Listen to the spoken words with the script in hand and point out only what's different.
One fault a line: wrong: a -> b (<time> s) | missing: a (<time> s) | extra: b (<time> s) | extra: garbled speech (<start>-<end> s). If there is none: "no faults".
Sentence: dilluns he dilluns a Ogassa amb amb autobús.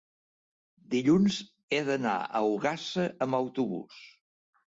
wrong: dilluns -> d'anar (1.9 s)
missing: amb (3.4 s)